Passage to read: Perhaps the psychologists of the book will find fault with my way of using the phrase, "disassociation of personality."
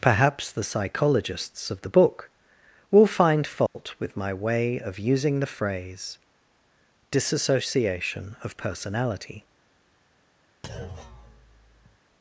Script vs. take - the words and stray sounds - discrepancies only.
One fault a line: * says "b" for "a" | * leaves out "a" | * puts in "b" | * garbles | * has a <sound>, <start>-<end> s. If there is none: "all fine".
* has a dropout, 3.7-3.8 s
* has a thud, 10.6-12.0 s